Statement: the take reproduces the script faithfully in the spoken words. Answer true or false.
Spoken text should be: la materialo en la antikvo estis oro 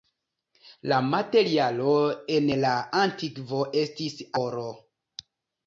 true